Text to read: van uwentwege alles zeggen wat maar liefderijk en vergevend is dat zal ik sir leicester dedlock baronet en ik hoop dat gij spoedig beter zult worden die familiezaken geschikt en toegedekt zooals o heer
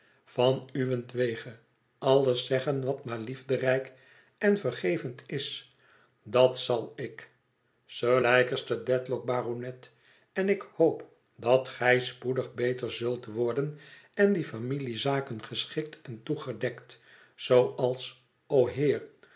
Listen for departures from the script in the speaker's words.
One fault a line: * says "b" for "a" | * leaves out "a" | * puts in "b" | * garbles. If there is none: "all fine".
* puts in "en"